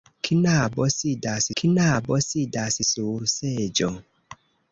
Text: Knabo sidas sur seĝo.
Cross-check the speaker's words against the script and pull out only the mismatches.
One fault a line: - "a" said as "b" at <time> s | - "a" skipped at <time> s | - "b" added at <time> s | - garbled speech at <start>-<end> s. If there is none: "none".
- "knabo sidas" added at 1.6 s